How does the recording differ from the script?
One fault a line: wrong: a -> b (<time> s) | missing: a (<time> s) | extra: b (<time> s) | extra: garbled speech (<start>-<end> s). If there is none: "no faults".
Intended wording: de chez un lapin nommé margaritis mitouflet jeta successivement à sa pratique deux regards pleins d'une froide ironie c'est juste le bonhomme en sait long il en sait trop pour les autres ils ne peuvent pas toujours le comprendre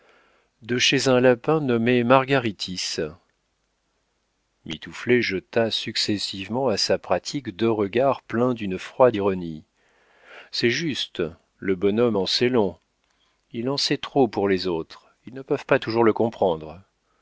no faults